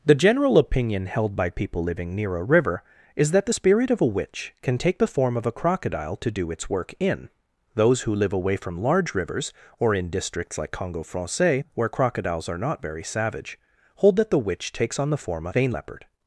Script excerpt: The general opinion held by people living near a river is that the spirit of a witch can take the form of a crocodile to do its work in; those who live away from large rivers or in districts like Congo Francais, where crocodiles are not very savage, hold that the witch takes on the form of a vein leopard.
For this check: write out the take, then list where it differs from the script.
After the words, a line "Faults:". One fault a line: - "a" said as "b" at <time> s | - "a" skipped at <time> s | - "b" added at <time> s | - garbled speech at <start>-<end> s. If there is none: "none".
The general opinion held by people living near a river is that the spirit of a witch can take the form of a crocodile to do its work in; those who live away from large rivers or in districts like Congo Francais, where crocodiles are not very savage, hold that the witch takes on the form of a vein leopard.
Faults:
none